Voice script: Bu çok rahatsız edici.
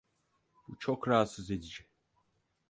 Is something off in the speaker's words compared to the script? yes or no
no